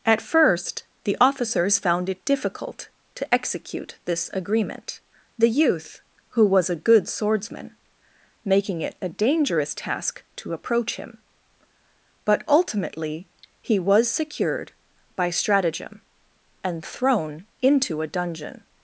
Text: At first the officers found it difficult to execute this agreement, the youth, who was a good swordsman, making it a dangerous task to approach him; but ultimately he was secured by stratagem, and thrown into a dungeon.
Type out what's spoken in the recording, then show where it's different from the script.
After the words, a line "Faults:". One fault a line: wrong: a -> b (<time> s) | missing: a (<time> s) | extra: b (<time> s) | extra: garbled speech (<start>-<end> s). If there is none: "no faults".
At first the officers found it difficult to execute this agreement, the youth, who was a good swordsman, making it a dangerous task to approach him; but ultimately he was secured by stratagem, and thrown into a dungeon.
Faults:
no faults